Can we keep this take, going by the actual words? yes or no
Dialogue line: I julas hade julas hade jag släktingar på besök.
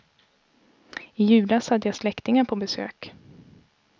no